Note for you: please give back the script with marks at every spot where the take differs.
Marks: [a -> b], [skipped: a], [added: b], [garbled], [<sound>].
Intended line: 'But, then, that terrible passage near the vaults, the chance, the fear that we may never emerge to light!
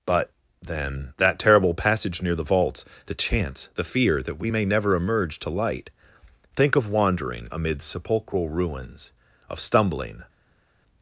'But, then, that terrible passage near the vaults, the chance, the fear that we may never emerge to light! [added: Think of wandering amid sepulchral ruins of stumbling]